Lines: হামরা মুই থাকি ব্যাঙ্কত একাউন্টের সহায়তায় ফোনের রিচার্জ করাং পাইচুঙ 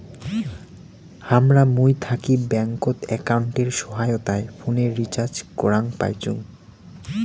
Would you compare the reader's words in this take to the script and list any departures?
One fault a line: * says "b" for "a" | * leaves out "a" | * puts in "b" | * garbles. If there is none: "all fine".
all fine